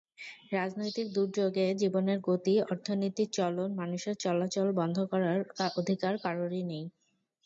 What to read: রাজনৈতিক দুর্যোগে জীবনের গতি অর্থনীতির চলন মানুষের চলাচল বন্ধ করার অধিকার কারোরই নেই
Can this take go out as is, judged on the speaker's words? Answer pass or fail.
pass